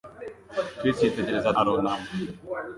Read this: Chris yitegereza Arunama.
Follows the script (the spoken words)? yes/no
yes